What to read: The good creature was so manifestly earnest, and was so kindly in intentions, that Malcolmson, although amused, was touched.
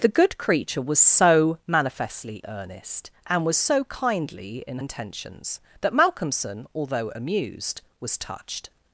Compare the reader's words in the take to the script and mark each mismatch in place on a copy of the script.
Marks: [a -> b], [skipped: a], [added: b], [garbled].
The good creature was so manifestly earnest, and was so kindly in intentions, that Malcolmson, although amused, was touched.